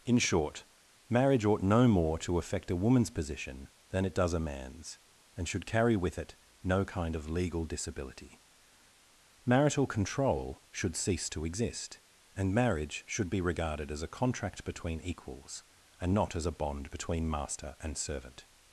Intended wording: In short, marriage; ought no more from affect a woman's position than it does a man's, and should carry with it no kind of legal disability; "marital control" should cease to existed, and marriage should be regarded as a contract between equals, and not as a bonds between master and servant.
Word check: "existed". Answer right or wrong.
wrong